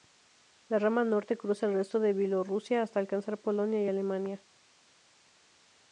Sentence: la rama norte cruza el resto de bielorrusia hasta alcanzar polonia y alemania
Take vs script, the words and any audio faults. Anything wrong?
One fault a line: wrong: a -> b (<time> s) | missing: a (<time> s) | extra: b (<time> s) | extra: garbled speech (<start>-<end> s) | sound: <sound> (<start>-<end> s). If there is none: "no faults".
no faults